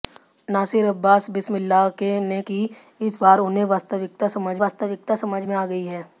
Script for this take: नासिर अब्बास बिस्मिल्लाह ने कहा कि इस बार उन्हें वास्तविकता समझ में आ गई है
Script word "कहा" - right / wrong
wrong